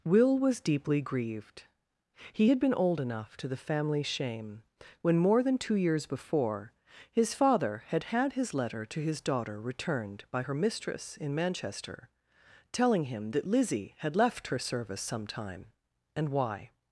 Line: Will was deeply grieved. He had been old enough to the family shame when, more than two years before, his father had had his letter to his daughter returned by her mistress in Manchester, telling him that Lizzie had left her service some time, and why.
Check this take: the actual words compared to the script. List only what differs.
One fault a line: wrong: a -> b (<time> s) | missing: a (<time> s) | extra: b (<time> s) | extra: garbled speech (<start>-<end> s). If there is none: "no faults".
no faults